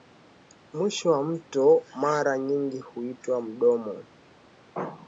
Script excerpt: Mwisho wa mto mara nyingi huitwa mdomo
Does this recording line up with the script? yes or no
yes